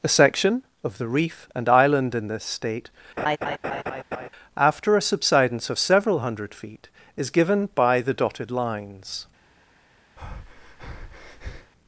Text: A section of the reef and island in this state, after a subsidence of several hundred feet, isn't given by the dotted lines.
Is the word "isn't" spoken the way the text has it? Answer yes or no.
no